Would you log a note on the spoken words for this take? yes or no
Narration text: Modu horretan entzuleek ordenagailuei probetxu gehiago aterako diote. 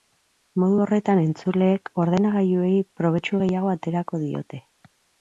no